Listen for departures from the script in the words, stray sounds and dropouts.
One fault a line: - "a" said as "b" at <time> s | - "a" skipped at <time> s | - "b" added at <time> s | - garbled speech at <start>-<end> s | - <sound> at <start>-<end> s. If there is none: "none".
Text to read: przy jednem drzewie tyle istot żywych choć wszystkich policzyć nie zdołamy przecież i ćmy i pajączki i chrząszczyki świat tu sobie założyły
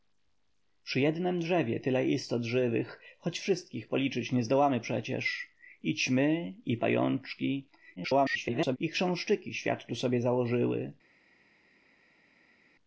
- garbled speech at 8.0-8.8 s